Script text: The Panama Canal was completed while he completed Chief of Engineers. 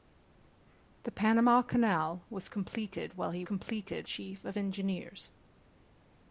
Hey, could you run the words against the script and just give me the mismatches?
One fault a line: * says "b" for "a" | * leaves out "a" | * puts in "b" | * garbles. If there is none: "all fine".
all fine